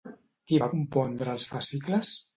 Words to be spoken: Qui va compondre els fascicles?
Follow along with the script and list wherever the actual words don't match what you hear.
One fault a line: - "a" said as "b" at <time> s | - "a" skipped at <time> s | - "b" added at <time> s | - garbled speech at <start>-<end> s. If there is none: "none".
none